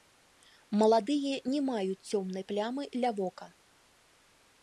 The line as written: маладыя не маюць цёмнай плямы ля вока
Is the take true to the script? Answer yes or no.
yes